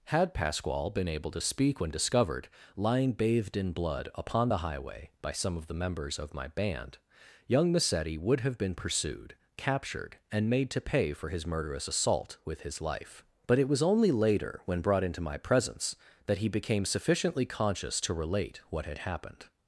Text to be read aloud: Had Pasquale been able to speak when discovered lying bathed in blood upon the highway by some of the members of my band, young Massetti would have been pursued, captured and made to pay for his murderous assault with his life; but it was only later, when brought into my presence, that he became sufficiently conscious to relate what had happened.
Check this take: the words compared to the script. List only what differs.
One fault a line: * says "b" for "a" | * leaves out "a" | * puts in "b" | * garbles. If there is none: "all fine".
all fine